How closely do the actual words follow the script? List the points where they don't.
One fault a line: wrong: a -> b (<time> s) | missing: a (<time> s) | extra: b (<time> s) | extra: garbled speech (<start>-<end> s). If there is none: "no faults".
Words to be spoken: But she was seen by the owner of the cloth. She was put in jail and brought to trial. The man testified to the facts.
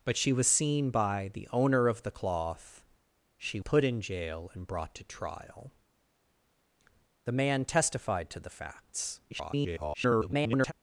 missing: was (3.6 s)
extra: garbled speech (9.3-10.7 s)